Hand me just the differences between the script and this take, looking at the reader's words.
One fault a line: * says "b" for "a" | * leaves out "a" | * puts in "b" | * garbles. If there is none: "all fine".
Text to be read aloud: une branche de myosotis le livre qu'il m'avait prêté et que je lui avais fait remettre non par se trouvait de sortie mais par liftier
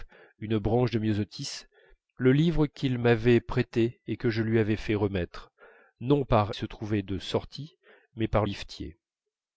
all fine